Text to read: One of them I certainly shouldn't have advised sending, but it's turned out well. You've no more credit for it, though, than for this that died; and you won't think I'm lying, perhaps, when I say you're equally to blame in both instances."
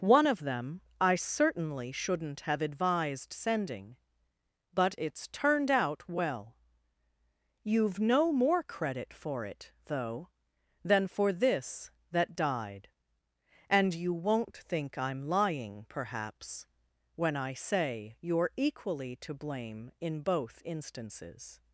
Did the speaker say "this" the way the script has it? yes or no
yes